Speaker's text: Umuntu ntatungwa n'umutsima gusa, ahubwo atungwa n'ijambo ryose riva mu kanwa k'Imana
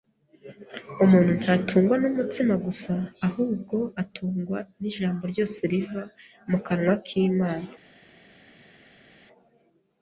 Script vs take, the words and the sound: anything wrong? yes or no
no